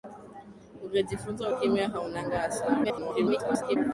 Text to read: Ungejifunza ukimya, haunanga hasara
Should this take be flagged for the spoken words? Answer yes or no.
yes